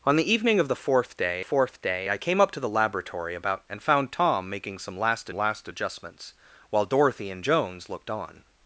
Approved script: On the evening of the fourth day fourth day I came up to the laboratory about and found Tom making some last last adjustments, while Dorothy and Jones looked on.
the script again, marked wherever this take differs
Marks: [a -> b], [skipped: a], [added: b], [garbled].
On the evening of the fourth day fourth day I came up to the laboratory about and found Tom making some last last adjustments, while Dorothy and Jones looked on.